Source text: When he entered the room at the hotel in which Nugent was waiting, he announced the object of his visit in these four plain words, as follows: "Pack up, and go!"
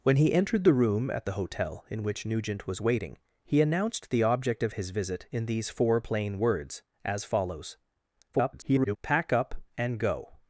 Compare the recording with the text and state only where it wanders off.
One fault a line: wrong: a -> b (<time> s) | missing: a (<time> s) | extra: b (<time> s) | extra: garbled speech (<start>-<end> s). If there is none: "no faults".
extra: garbled speech (8.3-9.0 s)